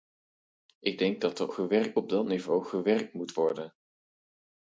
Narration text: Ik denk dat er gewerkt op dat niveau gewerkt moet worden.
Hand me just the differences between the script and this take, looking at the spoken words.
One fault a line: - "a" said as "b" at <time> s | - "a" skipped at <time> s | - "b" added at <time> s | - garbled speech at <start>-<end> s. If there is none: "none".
none